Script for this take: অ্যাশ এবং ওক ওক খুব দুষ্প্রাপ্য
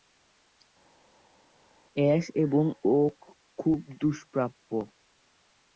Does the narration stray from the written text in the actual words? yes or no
yes